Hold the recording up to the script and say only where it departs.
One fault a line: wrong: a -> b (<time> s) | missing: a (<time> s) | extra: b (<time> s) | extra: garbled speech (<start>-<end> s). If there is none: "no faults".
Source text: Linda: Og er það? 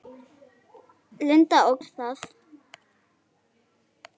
no faults